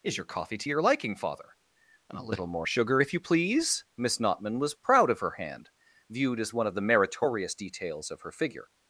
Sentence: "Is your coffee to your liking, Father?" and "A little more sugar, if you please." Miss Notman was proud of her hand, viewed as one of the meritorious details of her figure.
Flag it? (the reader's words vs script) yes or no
no